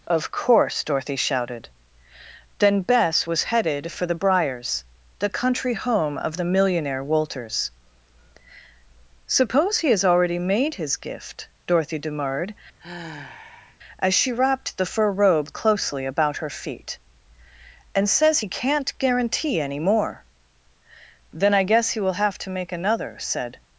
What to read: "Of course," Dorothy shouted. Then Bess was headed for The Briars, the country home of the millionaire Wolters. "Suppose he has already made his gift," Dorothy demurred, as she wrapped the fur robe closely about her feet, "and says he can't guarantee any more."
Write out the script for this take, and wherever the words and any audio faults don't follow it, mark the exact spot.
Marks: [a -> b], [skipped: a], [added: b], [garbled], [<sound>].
"Of course," Dorothy shouted. Then Bess was headed for The Briars, the country home of the millionaire Wolters. "Suppose he has already made his gift," Dorothy demurred, [sigh] as she wrapped the fur robe closely about her feet, "and says he can't guarantee any more." [added: Then I guess he will have to make another said]